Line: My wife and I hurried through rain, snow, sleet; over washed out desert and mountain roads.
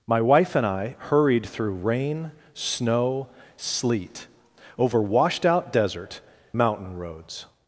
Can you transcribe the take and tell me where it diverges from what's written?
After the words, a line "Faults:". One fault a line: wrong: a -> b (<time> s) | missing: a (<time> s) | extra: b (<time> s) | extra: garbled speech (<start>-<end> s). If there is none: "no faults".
My wife and I hurried through rain, snow, sleet; over washed out desert mountain roads.
Faults:
missing: and (6.2 s)